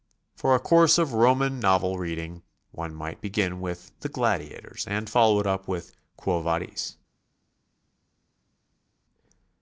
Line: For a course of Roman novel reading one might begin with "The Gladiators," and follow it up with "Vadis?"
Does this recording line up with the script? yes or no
no